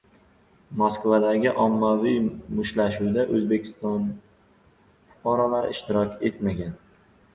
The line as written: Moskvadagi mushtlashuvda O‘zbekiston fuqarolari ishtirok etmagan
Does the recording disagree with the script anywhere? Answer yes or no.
yes